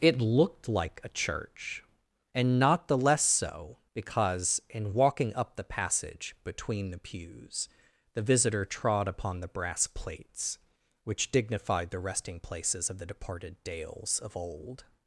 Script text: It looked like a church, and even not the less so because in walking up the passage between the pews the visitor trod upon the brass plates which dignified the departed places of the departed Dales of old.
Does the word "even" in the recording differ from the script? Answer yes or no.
yes